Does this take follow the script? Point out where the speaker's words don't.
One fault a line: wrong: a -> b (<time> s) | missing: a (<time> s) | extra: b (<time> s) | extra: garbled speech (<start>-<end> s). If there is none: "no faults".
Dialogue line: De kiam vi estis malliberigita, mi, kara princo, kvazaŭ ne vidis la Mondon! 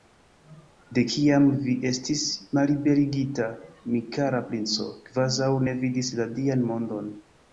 extra: Dian (6.4 s)